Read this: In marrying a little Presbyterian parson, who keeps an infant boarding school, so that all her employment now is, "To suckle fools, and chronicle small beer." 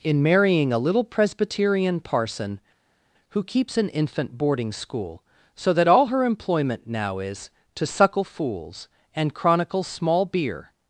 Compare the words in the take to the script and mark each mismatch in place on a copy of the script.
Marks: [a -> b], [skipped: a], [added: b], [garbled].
In marrying a little Presbyterian parson, who keeps an infant boarding school, so that all her employment now is, "To suckle fools, and chronicle small beer."